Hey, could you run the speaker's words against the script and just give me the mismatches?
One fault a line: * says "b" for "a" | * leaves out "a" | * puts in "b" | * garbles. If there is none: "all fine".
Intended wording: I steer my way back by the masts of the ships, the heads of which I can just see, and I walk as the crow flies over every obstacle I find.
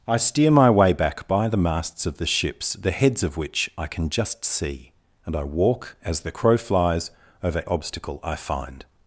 * leaves out "every"